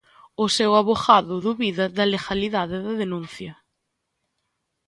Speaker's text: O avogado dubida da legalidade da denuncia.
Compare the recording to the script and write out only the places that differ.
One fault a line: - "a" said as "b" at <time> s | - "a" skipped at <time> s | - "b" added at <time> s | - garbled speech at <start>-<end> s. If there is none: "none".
- "seu" added at 0.6 s